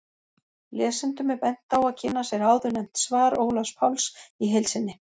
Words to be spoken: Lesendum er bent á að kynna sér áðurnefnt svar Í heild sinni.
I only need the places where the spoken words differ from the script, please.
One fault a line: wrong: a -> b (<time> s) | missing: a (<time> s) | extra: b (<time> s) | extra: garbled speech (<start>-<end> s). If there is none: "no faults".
extra: Ólafs Páls (3.5 s)